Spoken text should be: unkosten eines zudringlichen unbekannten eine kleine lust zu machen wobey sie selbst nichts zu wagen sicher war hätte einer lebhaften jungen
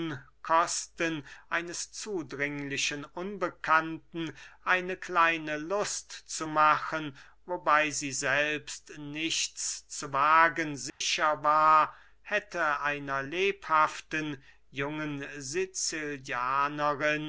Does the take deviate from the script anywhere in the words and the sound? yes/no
yes